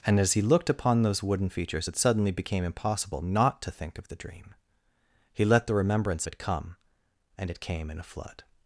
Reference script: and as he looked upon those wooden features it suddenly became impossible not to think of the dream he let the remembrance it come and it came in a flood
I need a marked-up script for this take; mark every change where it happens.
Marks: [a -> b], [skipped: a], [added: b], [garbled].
and as he looked upon those wooden features it suddenly became impossible not to think of the dream he let the remembrance it come and it came in a flood